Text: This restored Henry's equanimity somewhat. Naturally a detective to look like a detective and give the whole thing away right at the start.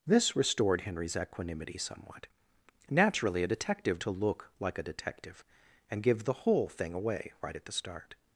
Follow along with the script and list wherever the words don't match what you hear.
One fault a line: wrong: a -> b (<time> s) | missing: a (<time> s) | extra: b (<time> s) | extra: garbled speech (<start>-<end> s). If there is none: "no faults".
no faults